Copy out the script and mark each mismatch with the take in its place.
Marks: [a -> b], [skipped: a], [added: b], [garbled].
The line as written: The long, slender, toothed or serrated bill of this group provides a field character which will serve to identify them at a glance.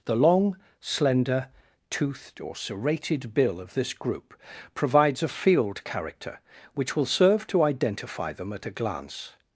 The long, slender, toothed or serrated bill of this group provides a field character which will serve to identify them at a glance.